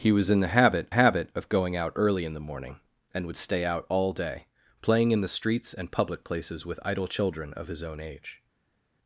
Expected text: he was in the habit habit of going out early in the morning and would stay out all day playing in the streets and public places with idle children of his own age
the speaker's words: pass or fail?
pass